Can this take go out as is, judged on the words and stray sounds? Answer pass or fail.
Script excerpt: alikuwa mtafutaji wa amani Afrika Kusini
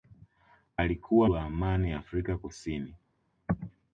fail